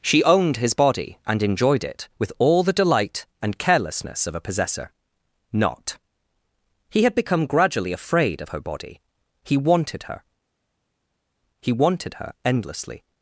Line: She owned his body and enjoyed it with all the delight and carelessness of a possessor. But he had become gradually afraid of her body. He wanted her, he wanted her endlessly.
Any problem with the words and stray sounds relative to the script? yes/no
yes